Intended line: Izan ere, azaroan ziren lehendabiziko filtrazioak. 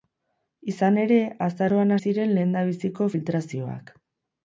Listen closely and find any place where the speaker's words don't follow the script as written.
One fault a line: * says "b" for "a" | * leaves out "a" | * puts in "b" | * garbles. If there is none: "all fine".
all fine